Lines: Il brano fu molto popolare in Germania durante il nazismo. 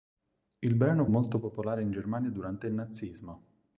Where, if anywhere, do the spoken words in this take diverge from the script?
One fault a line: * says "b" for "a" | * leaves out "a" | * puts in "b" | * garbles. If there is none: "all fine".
* leaves out "fu"